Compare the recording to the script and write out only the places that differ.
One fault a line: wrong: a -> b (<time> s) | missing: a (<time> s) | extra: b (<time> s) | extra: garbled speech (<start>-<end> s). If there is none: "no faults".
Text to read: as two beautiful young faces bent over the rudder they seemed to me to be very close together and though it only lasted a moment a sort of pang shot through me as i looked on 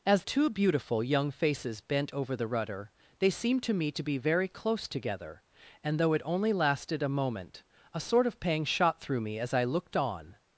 no faults